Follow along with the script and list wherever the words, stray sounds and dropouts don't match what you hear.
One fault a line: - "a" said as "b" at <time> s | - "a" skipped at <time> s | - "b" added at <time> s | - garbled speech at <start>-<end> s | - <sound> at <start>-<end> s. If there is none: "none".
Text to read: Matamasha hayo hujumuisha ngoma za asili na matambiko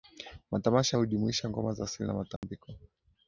- "hayo" skipped at 1.0 s
- dropout at 2.4-2.4 s